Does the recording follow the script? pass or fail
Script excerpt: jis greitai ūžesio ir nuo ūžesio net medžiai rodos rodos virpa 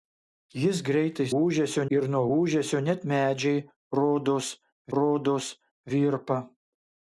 pass